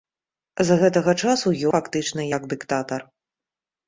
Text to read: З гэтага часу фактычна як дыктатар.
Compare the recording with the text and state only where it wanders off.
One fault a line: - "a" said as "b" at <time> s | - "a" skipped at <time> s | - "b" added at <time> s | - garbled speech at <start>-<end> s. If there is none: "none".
none